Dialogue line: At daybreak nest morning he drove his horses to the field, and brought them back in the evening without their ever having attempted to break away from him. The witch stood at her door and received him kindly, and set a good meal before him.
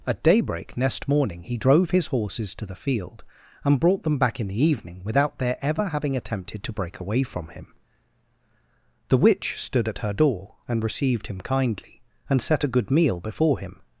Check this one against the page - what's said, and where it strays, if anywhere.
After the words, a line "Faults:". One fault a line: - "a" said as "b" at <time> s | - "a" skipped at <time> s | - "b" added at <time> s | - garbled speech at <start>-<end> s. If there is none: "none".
At daybreak next morning he drove his horses to the field, and brought them back in the evening without their ever having attempted to break away from him. The witch stood at her door and received him kindly, and set a good meal before him.
Faults:
- "nest" said as "next" at 0.8 s